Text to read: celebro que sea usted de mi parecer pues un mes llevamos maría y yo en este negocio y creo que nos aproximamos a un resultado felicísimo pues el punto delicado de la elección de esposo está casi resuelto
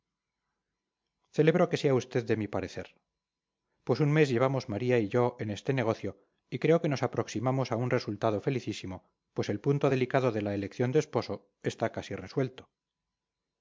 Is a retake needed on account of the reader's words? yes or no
no